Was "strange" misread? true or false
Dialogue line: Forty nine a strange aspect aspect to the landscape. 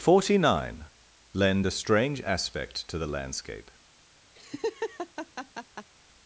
false